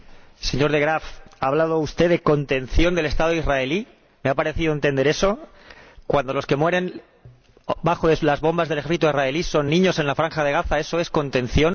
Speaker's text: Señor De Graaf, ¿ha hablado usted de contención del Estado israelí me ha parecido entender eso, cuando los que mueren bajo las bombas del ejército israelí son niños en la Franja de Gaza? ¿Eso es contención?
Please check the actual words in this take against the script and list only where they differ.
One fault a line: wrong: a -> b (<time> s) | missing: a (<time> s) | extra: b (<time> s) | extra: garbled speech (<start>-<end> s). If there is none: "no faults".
no faults